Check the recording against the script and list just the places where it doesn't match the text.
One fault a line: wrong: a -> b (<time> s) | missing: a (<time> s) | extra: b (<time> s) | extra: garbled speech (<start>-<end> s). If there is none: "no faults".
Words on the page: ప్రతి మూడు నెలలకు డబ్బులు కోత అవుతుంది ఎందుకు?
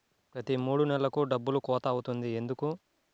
no faults